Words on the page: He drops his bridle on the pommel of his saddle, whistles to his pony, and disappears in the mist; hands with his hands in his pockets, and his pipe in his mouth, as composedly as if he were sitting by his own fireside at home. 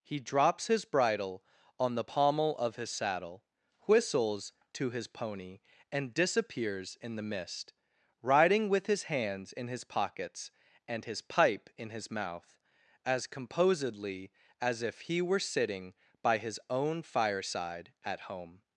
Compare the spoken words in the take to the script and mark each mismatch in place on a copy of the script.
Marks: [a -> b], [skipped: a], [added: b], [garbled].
He drops his bridle on the pommel of his saddle, whistles to his pony, and disappears in the mist; [hands -> riding] with his hands in his pockets, and his pipe in his mouth, as composedly as if he were sitting by his own fireside at home.